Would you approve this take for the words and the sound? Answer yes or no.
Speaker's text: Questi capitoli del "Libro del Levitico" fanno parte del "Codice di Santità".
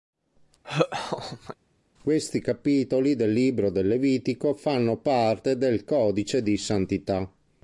no